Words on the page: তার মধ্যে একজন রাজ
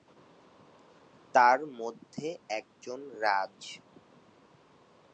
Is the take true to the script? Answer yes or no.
yes